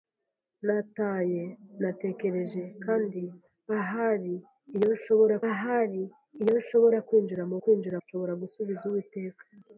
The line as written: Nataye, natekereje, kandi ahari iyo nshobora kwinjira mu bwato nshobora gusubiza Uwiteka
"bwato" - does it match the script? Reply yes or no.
no